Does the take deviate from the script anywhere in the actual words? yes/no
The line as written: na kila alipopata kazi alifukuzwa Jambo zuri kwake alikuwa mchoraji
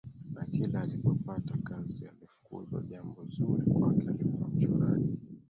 no